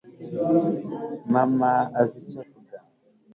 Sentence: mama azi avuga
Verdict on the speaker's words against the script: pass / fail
fail